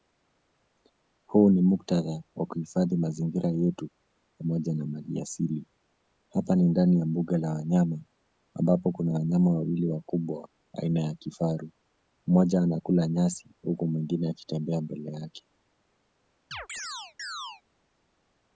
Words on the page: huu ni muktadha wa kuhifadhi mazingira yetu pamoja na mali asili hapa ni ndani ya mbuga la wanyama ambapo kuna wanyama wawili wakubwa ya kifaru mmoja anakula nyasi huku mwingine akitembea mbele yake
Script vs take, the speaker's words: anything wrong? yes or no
yes